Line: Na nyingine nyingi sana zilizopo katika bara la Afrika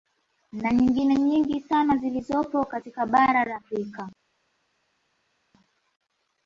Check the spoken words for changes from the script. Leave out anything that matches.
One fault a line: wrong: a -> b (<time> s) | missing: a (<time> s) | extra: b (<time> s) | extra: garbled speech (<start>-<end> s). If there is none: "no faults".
no faults